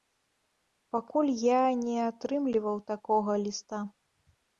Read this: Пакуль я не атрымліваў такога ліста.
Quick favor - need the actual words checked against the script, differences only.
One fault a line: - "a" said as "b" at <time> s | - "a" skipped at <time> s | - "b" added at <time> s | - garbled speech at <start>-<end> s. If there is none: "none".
none